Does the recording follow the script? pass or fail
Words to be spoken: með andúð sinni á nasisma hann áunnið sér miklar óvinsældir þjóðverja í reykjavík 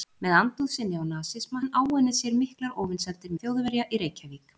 pass